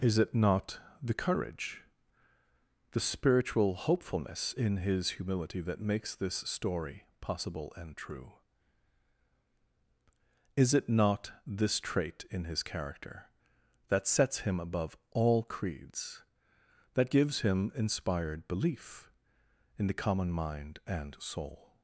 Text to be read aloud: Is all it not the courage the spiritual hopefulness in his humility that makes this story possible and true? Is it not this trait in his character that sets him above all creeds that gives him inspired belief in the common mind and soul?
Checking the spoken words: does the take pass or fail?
fail